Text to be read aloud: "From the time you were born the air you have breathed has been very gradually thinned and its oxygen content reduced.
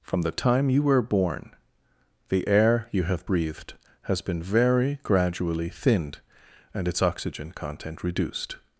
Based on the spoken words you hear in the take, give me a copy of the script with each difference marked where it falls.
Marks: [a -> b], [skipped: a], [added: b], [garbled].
"From the time you were born the air you have breathed has been very gradually thinned and its oxygen content reduced.